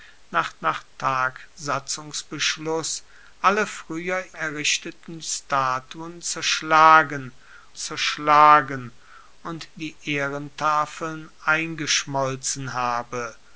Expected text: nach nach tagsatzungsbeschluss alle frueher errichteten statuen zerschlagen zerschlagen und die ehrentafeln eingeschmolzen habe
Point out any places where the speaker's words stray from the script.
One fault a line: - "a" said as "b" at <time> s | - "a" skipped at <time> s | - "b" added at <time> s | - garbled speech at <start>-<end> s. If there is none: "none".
none